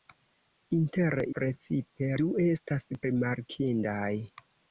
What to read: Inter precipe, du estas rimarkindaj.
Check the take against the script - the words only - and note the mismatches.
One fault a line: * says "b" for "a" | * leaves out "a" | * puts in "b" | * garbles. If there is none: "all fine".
all fine